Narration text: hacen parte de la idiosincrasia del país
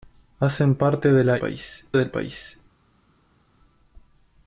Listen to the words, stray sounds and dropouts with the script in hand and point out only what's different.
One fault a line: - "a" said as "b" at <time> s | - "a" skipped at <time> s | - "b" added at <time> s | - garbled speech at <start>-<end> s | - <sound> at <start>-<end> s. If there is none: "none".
- "idiosincrasia" said as "país" at 1.4 s